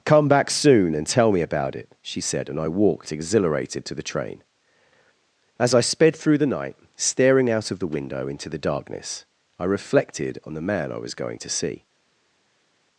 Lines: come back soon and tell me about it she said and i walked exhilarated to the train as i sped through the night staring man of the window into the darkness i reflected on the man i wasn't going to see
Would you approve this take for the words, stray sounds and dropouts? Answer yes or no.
no